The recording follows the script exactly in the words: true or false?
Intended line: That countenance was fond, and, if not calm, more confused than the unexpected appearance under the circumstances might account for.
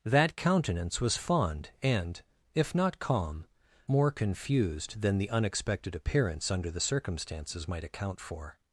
true